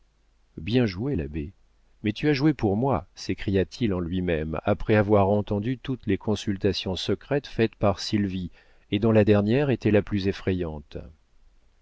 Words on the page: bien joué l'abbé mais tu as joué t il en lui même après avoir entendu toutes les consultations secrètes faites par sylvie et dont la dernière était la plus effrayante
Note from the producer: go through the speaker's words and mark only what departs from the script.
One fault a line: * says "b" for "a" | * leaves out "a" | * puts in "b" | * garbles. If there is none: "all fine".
* puts in "pour moi s'écria"